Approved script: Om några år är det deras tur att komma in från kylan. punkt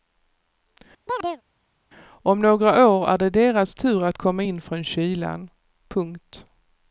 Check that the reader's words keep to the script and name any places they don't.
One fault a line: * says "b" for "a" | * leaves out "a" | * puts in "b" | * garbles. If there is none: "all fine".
all fine